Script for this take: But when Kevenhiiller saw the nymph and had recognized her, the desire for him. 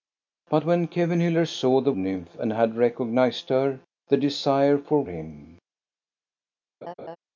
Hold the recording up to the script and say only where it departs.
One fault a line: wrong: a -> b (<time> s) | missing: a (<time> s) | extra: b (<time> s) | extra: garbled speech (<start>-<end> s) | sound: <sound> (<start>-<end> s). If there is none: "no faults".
sound: laugh (6.8-7.2 s)